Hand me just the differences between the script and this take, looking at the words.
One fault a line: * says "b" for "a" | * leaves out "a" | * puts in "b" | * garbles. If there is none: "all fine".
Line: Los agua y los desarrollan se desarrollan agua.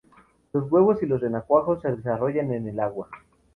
* says "huevos" for "agua"
* says "renacuajos" for "desarrollan"
* puts in "en el"